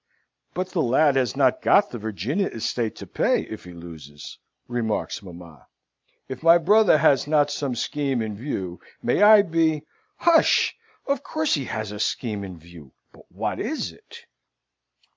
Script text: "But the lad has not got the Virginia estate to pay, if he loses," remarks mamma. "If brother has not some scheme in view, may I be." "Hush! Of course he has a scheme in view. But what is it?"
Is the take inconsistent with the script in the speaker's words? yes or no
yes